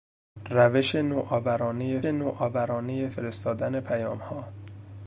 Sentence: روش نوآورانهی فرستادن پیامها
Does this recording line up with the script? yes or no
no